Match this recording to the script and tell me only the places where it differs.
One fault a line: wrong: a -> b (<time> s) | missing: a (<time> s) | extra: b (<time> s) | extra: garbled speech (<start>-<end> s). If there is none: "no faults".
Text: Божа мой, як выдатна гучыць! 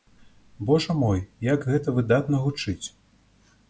extra: гэта (1.7 s)